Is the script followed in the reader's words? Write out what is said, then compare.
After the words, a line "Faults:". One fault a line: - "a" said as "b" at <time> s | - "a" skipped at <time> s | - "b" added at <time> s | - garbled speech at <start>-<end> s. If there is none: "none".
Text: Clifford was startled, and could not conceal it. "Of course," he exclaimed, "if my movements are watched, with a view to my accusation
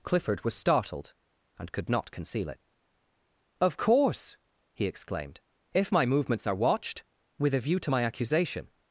Clifford was startled, and could not conceal it. "Of course," he exclaimed, "if my movements are watched, with a view to my accusation
Faults:
none